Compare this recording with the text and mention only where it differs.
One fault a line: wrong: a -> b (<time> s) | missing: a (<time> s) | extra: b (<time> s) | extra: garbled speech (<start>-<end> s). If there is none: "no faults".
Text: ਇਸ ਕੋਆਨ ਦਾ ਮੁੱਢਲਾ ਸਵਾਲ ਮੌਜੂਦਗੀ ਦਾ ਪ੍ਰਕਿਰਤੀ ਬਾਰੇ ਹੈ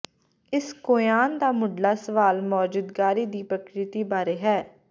wrong: ਦਾ -> ਦੀ (3.3 s)